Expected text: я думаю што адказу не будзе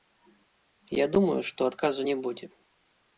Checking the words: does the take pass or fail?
pass